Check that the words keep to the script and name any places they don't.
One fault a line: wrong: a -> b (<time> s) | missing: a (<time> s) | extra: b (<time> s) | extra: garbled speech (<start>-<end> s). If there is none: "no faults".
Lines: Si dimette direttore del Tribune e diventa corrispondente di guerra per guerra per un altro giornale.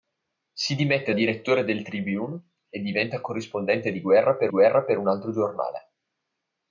no faults